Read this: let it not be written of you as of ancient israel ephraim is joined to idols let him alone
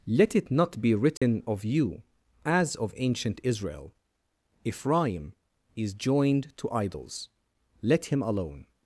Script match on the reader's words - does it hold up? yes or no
yes